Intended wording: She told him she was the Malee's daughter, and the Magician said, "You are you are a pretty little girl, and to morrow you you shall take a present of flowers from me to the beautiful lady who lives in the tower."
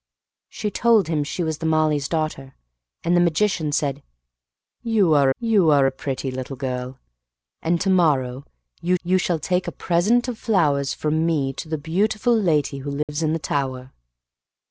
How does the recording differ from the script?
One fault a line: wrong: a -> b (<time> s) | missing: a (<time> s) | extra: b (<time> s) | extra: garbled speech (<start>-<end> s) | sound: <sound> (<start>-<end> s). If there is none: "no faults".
sound: dropout (13.0-13.1 s)